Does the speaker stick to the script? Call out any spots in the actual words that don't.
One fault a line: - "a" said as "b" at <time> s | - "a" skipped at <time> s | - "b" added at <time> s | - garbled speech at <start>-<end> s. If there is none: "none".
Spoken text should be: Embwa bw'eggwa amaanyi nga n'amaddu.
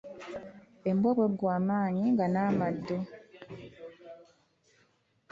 none